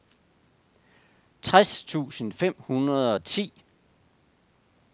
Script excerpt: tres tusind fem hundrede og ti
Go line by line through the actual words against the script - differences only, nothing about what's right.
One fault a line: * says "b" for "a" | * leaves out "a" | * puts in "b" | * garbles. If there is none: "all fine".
all fine